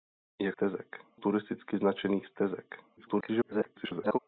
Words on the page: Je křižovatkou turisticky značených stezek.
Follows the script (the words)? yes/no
no